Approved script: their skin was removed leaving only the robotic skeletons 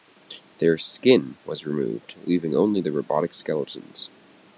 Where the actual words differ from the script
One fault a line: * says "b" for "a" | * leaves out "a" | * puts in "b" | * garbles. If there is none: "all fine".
all fine